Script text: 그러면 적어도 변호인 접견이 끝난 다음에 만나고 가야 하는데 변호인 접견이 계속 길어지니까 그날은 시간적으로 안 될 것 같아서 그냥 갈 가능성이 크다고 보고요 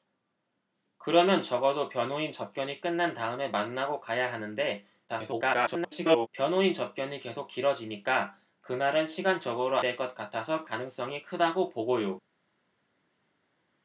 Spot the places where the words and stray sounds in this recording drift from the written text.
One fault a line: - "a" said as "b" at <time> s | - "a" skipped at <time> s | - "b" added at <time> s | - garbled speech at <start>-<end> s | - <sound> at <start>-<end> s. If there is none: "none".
- garbled speech at 5.1-6.3 s
- "안" skipped at 9.8 s
- "그냥 갈" skipped at 10.6 s